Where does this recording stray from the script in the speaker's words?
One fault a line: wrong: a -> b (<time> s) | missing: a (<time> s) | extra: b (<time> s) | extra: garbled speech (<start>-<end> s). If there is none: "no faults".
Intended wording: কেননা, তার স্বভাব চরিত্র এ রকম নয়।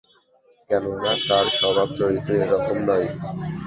no faults